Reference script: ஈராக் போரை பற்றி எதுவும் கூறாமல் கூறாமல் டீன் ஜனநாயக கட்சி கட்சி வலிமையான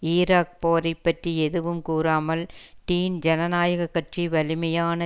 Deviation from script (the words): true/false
true